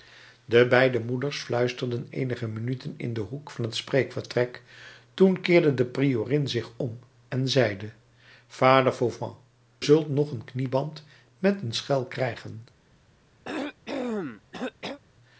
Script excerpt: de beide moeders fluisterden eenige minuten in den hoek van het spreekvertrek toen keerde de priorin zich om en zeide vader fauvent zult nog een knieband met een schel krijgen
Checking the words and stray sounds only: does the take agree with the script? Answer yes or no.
no